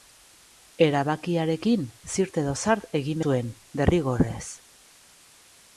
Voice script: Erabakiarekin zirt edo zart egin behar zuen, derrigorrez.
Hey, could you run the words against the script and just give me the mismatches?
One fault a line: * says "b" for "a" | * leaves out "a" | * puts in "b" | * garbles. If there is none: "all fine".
* leaves out "behar"